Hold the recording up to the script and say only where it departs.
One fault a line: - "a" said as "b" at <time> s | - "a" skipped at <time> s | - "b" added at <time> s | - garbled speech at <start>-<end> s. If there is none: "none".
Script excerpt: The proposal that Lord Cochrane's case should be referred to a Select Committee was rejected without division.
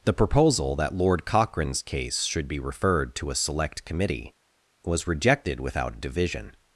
none